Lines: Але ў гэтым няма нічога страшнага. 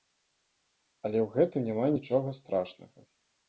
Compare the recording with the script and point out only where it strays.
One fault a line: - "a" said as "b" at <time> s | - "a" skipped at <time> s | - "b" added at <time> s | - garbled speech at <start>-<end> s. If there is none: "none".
none